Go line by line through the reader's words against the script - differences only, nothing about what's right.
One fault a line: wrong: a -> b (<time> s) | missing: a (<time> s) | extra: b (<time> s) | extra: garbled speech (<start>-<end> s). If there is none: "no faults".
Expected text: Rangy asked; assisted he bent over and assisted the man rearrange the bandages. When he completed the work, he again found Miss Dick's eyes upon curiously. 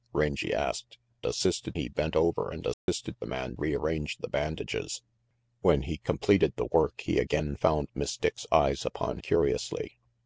no faults